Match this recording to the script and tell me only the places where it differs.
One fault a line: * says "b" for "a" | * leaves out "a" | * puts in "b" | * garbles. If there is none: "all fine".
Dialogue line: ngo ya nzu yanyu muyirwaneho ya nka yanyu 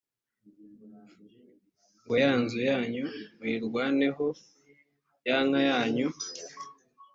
all fine